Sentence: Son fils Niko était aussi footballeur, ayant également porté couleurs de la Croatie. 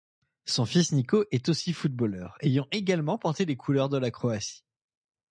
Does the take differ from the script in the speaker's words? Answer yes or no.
yes